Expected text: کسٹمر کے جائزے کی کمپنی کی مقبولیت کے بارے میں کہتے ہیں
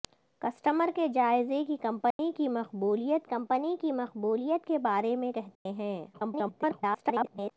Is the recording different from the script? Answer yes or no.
yes